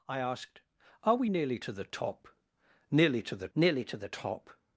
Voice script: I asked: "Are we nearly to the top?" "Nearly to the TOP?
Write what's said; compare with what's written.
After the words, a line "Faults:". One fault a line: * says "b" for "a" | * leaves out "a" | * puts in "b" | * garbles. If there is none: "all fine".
I asked: "Are we nearly to the top?" "Nearly to the nearly to the TOP?
Faults:
* puts in "nearly to the"